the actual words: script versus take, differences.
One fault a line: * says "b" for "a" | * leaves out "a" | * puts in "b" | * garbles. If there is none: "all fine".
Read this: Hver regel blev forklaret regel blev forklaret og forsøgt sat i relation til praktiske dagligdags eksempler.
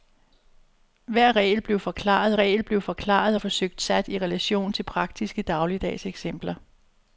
all fine